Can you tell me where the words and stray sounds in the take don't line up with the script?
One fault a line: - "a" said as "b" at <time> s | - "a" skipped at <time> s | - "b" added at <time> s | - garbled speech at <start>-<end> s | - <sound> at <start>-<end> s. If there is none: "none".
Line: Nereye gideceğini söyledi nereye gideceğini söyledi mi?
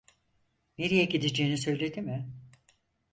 - "nereye gideceğini söyledi" skipped at 2.0 s